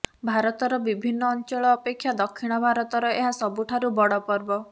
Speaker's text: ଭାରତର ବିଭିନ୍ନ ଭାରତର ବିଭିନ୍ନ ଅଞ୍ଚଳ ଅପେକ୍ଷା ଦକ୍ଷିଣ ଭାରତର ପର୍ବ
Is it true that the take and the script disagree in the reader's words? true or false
true